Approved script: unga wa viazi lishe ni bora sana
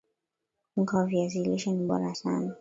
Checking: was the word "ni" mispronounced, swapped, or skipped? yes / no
no